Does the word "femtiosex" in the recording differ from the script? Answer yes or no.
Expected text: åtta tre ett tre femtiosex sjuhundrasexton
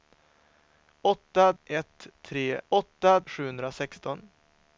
yes